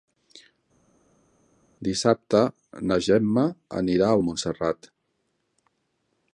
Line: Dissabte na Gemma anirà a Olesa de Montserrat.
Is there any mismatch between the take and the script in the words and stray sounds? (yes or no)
yes